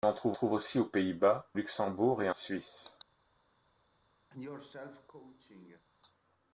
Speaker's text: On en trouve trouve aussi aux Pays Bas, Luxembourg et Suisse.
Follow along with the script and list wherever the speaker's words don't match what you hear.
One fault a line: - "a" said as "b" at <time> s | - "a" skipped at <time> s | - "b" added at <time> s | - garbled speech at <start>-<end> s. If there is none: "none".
none